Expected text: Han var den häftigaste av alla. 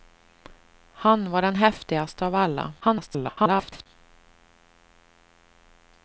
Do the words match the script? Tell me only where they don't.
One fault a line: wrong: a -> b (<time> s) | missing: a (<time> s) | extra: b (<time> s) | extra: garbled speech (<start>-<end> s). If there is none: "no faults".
extra: garbled speech (2.8-3.9 s)